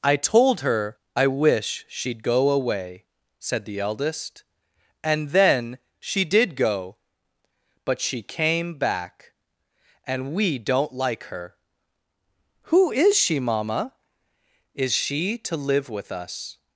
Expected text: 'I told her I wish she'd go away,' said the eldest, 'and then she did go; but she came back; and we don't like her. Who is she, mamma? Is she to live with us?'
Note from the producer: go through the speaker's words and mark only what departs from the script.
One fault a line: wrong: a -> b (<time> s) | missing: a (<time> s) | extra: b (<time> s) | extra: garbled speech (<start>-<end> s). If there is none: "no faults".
no faults